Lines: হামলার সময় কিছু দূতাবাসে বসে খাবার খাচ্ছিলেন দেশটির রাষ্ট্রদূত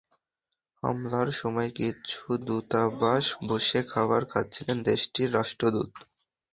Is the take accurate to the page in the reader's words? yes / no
yes